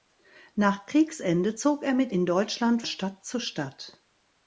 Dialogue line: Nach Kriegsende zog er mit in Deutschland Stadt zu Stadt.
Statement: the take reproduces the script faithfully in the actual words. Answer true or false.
true